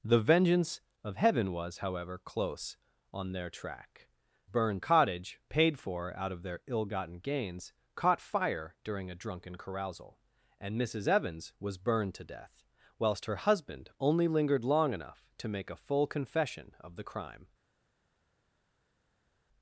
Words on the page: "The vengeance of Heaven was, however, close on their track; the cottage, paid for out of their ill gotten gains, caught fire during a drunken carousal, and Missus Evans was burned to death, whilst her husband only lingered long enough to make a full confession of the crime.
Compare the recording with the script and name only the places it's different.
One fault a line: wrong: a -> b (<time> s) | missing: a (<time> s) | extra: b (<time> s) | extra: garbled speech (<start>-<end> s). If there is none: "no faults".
wrong: the -> burned (4.4 s)